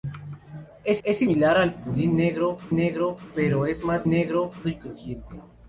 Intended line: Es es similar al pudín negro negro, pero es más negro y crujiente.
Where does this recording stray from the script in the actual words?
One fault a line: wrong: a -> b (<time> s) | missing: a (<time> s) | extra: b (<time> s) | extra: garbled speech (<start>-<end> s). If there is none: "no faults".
no faults